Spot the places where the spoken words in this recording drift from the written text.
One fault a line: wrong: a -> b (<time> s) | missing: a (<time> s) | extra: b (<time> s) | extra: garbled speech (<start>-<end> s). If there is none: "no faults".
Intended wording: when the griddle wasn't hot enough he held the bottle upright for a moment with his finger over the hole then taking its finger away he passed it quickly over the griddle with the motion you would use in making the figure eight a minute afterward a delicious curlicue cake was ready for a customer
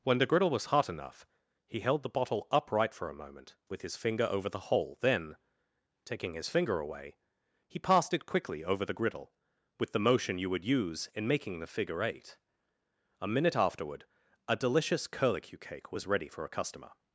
wrong: wasn't -> was (0.5 s)
wrong: its -> his (6.3 s)